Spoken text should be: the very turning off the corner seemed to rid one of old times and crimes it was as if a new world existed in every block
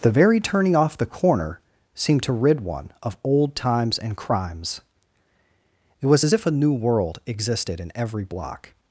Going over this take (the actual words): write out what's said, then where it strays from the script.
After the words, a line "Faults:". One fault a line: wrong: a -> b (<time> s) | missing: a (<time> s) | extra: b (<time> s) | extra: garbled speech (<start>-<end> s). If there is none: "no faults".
the very turning off the corner seemed to rid one of old times and crimes it was as if a new world existed in every block
Faults:
no faults